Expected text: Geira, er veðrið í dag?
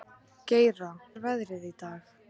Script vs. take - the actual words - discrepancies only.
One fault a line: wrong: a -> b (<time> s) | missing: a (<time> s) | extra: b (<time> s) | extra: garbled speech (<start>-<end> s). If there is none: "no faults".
no faults